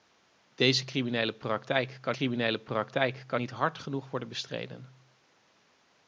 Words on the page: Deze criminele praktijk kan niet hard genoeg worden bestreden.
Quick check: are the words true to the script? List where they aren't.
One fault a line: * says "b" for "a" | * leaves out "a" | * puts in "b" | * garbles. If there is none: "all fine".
* puts in "criminele praktijk kan"